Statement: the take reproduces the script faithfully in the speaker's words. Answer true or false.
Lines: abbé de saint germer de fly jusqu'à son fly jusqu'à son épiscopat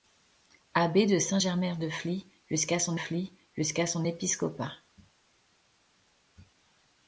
true